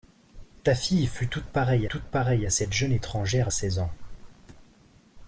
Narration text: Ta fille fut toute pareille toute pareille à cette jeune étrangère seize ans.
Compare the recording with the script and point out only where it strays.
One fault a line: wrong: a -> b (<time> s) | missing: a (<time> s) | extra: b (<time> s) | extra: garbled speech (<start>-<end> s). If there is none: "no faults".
no faults